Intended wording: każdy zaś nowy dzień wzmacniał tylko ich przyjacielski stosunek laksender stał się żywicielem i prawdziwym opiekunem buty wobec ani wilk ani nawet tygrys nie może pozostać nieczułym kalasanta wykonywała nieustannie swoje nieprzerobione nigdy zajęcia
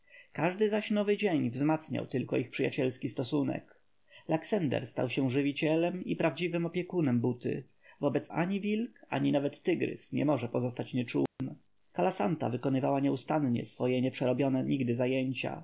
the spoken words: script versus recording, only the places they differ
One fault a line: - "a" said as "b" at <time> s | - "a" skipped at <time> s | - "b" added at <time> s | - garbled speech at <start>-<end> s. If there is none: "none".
none